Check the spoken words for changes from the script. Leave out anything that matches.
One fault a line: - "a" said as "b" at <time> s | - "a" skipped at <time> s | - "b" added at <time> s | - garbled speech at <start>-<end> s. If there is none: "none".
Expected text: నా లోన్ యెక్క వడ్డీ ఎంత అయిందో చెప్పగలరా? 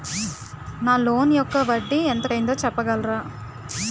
none